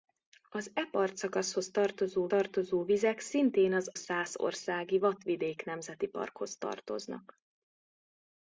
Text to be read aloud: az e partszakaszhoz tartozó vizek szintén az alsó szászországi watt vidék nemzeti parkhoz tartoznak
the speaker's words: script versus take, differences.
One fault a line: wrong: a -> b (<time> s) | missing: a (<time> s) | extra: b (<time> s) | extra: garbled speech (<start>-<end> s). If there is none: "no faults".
extra: tartozó (2.3 s)
missing: alsó (3.9 s)